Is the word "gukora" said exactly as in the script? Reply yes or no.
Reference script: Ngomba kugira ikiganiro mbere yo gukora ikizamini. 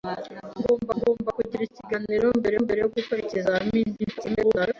yes